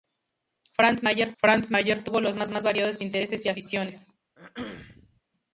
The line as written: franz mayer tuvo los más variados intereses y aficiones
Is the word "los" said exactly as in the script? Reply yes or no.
yes